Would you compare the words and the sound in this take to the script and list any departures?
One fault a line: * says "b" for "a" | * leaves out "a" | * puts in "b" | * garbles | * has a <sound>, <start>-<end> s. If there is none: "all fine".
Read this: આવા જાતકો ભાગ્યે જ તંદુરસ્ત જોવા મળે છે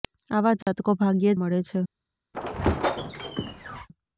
* has a dropout, 0.6-0.7 s
* leaves out "જ તંદુરસ્ત જોવા"
* has a squeak, 2.3-3.9 s